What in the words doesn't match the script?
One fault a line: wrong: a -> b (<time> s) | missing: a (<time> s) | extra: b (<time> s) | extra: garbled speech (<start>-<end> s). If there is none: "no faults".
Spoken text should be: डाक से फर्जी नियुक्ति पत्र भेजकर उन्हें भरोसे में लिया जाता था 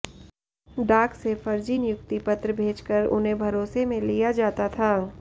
no faults